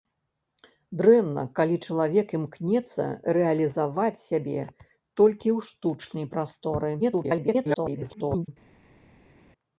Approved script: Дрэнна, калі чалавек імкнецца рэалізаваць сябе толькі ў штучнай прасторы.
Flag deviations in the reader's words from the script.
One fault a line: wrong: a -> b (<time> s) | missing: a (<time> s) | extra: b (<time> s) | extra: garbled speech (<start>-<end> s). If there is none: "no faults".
extra: garbled speech (7.0-8.5 s)